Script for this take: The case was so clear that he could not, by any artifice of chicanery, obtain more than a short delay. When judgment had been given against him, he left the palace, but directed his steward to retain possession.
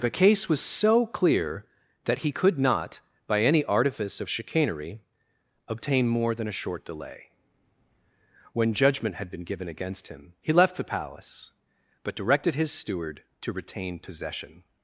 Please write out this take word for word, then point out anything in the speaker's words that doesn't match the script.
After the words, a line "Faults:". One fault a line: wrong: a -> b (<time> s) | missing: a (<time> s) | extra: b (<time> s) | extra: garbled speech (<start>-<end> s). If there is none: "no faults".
The case was so clear that he could not, by any artifice of chicanery, obtain more than a short delay. When judgment had been given against him, he left the palace, but directed his steward to retain possession.
Faults:
no faults